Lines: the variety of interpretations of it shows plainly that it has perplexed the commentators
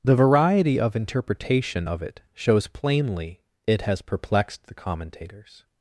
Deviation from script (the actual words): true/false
true